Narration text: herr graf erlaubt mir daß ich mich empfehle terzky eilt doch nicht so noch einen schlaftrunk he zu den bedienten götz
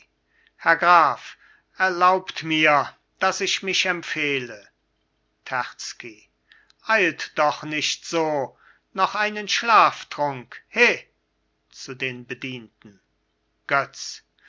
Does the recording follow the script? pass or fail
pass